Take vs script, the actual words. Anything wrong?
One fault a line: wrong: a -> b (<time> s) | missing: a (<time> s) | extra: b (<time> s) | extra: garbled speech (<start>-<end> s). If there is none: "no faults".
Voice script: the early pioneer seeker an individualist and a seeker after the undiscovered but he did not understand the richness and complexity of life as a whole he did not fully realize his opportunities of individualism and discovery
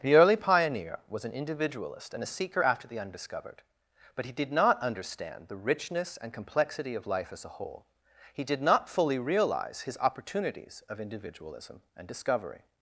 wrong: seeker -> was (1.1 s)